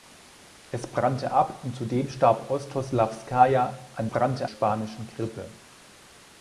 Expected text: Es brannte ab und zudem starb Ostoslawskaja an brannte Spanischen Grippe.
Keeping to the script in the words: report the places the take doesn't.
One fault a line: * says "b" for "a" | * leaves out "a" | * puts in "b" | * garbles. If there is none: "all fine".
all fine